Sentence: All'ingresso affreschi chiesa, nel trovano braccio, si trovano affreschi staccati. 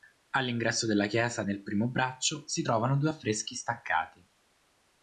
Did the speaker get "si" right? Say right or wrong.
right